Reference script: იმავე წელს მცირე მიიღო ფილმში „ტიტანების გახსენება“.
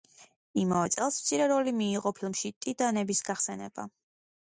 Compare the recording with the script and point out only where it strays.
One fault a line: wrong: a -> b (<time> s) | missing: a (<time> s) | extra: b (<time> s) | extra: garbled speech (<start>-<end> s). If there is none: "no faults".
extra: როლი (1.5 s)